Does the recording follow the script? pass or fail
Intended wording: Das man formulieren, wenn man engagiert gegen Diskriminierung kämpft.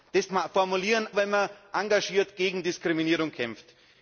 pass